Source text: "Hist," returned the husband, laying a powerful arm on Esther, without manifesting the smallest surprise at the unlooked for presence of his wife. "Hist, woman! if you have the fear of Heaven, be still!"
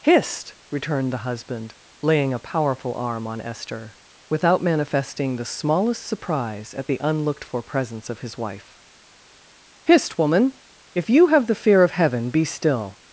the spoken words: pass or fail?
pass